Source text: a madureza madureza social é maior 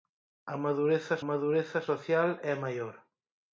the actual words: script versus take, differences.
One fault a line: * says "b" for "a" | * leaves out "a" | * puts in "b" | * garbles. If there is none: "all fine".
all fine